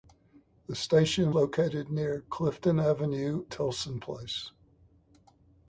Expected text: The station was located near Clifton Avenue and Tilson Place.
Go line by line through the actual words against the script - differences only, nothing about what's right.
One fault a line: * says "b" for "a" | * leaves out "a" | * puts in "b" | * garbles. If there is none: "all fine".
* leaves out "was"
* leaves out "and"